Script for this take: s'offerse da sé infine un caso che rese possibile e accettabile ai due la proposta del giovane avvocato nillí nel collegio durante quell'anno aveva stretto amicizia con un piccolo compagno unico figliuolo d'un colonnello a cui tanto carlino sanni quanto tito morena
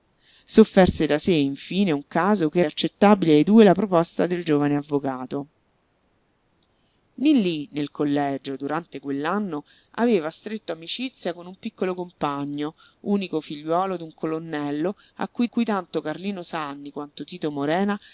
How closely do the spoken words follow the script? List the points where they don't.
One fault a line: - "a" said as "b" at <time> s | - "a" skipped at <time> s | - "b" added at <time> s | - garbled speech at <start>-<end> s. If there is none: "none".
- "rese possibile" skipped at 2.6 s
- "cui" added at 15.4 s